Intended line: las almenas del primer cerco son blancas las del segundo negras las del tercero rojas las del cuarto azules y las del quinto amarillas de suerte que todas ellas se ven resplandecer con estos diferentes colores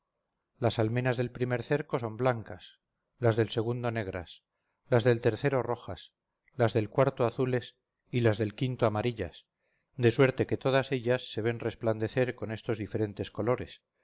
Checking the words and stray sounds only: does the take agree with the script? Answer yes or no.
yes